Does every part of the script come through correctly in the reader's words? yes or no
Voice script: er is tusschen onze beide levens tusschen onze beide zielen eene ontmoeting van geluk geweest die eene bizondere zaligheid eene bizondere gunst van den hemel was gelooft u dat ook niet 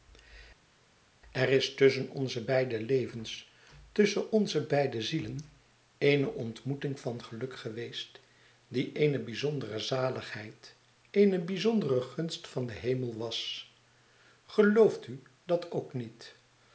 yes